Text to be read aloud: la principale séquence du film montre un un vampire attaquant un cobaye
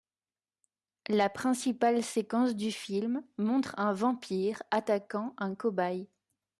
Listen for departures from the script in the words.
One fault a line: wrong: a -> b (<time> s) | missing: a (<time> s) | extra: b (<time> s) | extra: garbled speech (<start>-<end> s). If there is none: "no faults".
missing: un (3.9 s)